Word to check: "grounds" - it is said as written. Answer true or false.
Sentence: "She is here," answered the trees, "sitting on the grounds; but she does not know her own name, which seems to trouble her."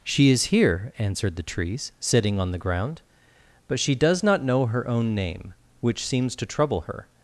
false